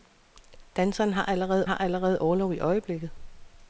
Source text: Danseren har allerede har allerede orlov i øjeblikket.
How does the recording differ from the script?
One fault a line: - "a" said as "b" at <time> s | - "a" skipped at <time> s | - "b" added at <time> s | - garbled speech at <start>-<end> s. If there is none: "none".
none